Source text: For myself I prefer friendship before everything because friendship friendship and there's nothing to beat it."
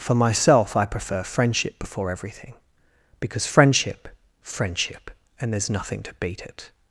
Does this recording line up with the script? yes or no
yes